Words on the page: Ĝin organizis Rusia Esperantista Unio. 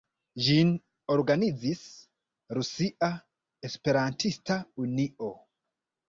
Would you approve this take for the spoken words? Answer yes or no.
yes